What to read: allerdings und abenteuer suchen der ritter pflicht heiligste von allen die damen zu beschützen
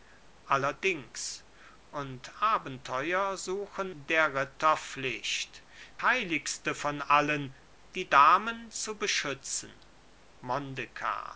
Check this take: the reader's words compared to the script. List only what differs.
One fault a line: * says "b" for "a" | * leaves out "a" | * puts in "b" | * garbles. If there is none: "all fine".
all fine